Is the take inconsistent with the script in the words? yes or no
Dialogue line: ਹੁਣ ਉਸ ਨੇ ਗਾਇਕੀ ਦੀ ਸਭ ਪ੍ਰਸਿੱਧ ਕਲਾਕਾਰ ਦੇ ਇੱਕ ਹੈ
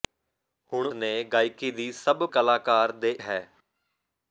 yes